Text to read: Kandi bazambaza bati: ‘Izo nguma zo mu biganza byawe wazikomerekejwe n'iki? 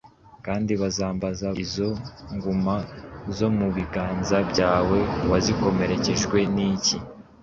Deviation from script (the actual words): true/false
true